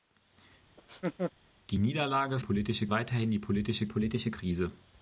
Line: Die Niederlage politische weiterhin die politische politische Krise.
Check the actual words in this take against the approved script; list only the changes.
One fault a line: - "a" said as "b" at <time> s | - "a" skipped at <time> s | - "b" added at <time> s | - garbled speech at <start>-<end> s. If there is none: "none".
none